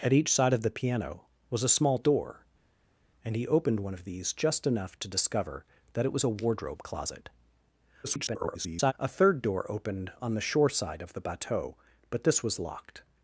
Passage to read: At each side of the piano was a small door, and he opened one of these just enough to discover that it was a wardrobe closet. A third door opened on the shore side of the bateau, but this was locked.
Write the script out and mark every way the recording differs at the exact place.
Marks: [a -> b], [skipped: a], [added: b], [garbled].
At each side of the piano was a small door, and he opened one of these just enough to discover that it was a wardrobe closet. [garbled] A third door opened on the shore side of the bateau, but this was locked.